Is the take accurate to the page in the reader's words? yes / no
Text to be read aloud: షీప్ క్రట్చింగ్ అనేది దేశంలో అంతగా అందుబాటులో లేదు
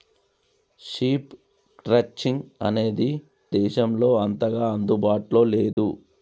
yes